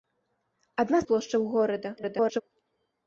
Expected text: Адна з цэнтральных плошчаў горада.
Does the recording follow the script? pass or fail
fail